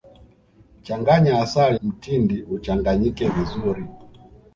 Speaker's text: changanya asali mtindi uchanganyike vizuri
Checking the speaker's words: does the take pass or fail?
pass